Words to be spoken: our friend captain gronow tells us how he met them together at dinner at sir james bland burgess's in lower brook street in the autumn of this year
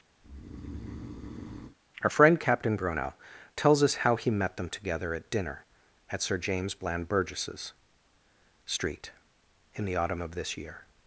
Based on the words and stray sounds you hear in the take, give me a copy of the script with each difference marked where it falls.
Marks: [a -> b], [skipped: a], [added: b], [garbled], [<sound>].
[breath] our friend captain gronow tells us how he met them together at dinner at sir james bland burgess's [skipped: in lower brook] street in the autumn of this year